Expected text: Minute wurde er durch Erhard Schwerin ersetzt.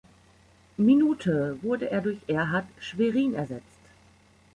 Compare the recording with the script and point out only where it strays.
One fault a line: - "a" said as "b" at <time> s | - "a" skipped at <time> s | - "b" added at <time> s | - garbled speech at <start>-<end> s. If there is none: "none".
none